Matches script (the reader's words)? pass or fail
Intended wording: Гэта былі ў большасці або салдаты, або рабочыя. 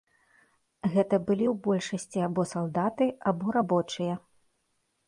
pass